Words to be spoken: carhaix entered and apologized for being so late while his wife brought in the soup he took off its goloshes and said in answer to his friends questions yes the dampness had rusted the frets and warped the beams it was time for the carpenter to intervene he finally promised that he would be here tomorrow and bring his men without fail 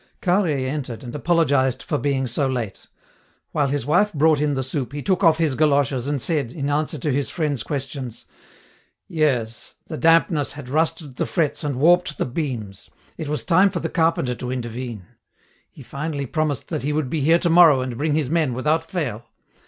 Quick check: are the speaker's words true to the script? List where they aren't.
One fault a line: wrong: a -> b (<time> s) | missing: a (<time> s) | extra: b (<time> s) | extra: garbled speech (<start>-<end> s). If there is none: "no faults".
wrong: its -> his (5.4 s)